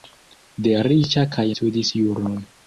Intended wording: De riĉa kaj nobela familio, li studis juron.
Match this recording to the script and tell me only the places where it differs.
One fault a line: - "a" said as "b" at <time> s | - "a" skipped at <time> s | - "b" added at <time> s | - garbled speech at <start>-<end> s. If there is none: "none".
- "nobela familio li" skipped at 1.5 s